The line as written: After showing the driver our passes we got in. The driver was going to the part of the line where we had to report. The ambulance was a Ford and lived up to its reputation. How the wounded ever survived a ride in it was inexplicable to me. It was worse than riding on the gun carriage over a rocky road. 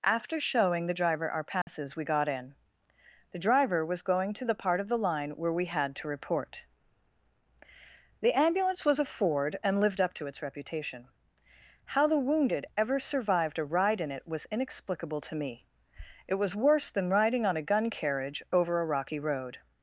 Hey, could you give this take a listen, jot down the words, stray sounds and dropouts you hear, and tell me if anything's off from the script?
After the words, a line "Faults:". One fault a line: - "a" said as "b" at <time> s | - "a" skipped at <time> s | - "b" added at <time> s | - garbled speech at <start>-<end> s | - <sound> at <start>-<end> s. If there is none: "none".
After showing the driver our passes we got in. The driver was going to the part of the line where we had to report. The ambulance was a Ford and lived up to its reputation. How the wounded ever survived a ride in it was inexplicable to me. It was worse than riding on a gun carriage over a rocky road.
Faults:
- dropout at 1.6-1.7 s
- "the" said as "a" at 17.6 s